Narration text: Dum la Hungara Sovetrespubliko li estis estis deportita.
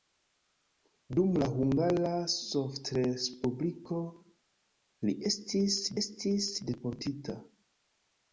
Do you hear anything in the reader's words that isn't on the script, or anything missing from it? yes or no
no